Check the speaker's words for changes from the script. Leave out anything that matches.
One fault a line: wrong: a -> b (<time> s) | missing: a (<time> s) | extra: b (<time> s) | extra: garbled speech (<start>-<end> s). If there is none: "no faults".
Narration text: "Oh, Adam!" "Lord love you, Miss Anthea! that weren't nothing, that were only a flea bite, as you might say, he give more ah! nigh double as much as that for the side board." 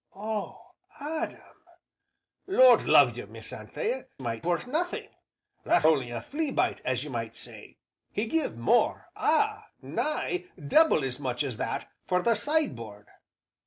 wrong: that -> might (4.2 s)
missing: were (5.9 s)